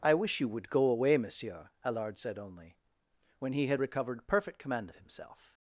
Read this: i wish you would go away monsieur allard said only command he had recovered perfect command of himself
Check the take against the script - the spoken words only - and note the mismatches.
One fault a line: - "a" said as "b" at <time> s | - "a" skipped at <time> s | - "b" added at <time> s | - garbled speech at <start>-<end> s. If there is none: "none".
- "command" said as "when" at 3.4 s